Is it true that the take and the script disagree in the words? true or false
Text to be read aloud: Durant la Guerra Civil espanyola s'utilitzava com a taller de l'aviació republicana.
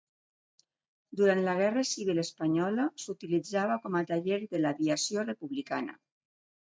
false